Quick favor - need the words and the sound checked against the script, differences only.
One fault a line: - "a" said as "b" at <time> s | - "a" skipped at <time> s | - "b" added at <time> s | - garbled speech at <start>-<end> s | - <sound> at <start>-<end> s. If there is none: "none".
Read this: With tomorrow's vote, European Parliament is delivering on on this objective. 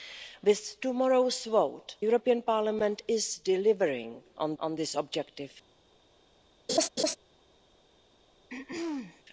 - laugh at 6.7-7.2 s
- throat clearing at 8.5-9.2 s